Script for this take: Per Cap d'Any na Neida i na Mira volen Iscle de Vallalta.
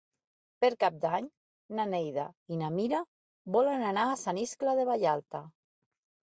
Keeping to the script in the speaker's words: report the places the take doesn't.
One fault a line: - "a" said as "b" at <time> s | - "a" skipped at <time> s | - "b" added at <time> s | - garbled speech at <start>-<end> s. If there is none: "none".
- "anar a Sant" added at 3.9 s